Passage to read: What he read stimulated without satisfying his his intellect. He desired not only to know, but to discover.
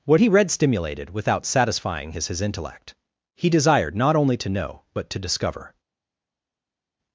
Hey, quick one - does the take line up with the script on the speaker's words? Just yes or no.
yes